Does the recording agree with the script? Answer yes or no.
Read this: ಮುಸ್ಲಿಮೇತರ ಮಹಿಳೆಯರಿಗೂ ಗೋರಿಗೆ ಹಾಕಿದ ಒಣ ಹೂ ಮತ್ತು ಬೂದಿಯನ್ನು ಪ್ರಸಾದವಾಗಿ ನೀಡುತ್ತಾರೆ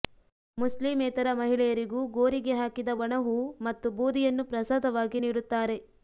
yes